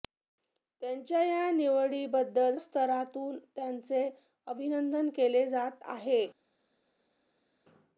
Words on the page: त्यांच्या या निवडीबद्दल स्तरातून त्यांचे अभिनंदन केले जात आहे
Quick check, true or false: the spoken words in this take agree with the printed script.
true